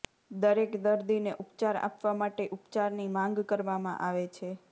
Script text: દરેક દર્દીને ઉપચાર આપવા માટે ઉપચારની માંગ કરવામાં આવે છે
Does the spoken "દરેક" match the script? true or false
true